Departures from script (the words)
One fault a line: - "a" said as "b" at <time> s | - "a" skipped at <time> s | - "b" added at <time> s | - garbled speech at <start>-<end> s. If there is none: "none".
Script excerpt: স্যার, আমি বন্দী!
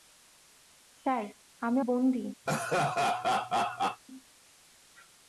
none